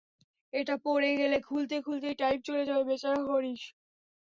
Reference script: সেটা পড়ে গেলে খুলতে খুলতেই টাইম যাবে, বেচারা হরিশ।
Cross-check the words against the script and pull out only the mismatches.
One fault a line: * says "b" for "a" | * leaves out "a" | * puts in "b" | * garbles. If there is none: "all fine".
* says "এটা" for "সেটা"
* puts in "চলে"